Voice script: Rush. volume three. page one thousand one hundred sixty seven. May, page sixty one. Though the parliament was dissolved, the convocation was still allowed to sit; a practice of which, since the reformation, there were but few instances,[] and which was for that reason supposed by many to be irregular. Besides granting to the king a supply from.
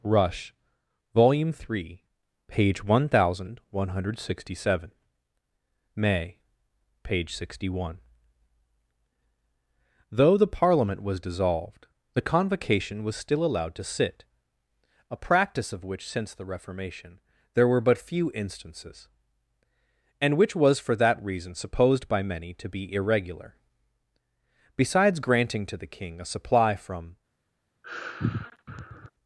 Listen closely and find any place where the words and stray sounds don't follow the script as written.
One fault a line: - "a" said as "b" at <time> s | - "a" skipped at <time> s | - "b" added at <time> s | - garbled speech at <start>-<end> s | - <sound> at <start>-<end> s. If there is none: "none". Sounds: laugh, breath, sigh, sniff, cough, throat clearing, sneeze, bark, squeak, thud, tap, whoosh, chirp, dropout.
- sigh at 27.8-29.1 s